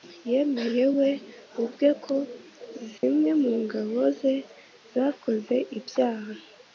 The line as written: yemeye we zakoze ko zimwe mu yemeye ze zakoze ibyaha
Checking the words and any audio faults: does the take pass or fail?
fail